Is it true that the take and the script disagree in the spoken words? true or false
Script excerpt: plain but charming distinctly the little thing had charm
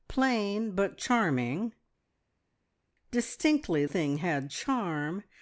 true